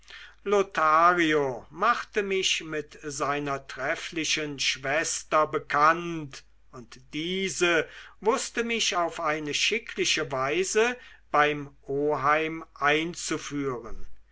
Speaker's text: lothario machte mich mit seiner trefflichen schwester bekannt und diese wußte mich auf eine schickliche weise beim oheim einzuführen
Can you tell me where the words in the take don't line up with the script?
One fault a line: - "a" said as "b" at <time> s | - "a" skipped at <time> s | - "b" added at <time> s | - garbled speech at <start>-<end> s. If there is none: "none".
none